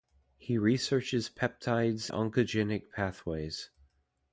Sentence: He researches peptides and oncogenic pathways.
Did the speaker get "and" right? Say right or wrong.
wrong